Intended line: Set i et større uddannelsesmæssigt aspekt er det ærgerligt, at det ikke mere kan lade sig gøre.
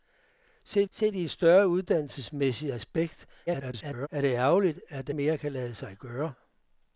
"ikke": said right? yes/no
no